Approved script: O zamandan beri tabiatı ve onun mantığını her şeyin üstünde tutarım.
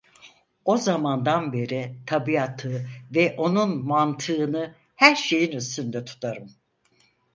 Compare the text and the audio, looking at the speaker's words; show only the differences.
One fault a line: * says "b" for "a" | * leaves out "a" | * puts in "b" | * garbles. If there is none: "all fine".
all fine